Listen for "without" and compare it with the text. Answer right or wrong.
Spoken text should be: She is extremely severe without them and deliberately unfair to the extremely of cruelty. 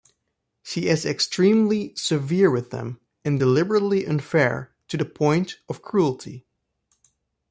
wrong